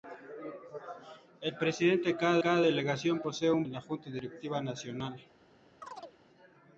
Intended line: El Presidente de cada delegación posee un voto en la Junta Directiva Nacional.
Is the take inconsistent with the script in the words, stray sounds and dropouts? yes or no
yes